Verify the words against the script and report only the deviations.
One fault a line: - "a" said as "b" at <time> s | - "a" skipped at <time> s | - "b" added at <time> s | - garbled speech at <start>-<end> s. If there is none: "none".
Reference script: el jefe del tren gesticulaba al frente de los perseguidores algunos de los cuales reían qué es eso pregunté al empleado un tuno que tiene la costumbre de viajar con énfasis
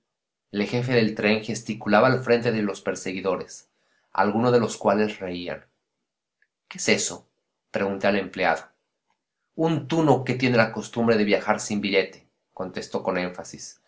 - "sin billete contestó" added at 11.6 s